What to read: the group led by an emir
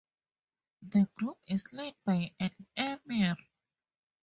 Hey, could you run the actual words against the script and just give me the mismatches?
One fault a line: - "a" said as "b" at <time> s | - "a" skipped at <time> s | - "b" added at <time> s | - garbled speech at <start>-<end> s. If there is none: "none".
- "is" added at 1.5 s